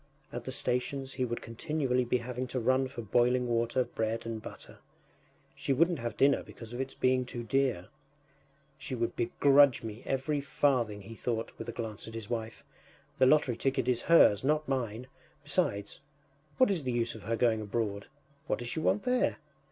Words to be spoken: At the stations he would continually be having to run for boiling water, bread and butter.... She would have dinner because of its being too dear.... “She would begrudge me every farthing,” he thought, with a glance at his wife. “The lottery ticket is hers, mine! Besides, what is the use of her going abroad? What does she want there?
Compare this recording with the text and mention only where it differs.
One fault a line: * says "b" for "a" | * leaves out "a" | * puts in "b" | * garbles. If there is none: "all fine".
* says "wouldn't" for "would"
* puts in "not"